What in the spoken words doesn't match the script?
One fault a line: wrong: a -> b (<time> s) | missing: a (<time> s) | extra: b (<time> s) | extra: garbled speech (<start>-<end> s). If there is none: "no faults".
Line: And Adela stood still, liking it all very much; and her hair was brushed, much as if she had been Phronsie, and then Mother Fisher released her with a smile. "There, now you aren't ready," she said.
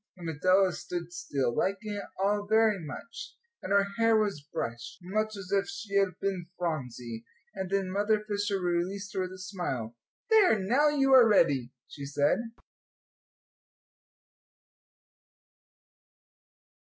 wrong: aren't -> are (11.1 s)